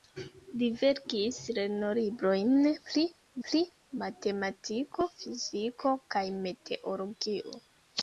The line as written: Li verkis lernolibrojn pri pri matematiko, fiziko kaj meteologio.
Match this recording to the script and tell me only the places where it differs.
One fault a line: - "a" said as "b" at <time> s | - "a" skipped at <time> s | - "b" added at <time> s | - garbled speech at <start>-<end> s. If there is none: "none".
none